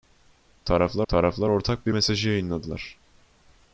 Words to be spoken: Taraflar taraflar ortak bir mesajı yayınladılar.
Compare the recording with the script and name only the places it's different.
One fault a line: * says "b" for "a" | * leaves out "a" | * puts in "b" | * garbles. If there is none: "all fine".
all fine